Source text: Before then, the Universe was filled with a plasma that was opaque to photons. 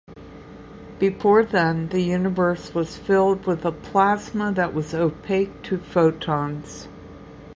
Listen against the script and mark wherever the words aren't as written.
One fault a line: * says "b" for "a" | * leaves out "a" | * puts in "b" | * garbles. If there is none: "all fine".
all fine